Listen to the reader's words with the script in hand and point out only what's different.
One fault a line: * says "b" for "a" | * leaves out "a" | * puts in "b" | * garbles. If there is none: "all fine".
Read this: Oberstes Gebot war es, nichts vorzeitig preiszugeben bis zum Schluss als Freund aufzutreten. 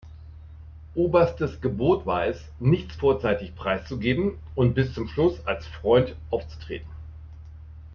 * puts in "und"